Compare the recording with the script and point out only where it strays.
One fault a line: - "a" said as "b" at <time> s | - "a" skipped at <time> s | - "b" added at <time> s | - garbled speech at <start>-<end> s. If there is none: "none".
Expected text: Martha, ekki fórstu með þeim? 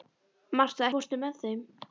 - "ekki" skipped at 0.9 s